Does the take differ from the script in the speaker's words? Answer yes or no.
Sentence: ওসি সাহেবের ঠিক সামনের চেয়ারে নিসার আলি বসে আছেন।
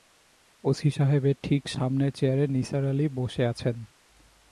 no